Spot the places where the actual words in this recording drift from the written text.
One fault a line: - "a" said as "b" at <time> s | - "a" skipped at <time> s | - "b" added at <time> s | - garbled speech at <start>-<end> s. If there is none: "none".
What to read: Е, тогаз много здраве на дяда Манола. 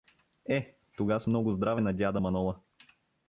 none